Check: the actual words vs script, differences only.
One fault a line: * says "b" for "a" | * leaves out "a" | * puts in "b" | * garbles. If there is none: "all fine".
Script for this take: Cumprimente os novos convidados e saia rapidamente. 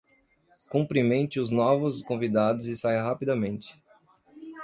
all fine